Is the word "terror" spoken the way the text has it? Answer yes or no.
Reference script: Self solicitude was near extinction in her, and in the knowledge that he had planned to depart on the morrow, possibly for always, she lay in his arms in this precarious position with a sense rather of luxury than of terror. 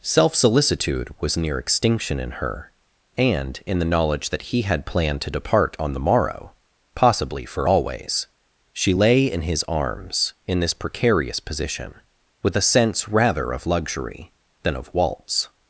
no